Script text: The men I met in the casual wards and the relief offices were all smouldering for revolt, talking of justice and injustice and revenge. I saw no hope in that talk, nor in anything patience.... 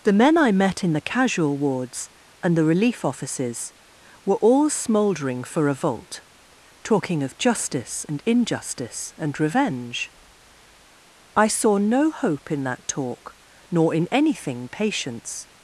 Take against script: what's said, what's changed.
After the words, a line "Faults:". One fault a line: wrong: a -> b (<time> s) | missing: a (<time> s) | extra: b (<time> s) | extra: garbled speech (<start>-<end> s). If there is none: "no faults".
The men I met in the casual wards and the relief offices were all smouldering for revolt, talking of justice and injustice and revenge. I saw no hope in that talk, nor in anything patience....
Faults:
no faults